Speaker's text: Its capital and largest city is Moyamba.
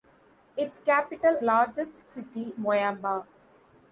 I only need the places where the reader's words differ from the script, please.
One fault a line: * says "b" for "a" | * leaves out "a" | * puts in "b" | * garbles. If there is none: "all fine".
* leaves out "and"
* leaves out "is"